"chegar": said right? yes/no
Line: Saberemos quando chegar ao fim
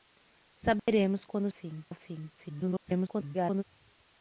no